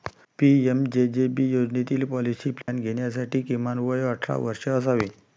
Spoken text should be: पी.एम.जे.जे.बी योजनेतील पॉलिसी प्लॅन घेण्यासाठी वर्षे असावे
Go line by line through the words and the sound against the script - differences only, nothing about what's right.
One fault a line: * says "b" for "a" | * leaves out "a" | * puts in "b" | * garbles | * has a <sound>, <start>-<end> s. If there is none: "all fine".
* has a dropout, 2.6-2.7 s
* puts in "किमान वय अठरा"